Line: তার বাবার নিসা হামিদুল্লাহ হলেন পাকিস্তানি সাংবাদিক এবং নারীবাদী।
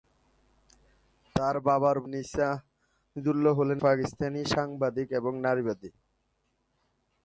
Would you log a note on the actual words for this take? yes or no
no